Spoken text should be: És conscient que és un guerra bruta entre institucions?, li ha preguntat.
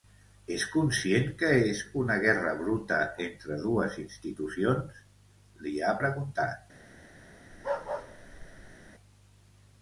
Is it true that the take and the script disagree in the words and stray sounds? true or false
true